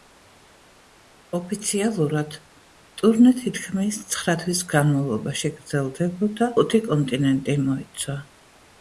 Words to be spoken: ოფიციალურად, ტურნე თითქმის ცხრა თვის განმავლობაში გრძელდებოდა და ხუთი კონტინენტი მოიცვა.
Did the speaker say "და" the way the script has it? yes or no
no